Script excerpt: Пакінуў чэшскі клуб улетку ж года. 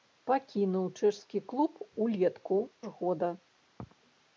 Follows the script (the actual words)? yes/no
yes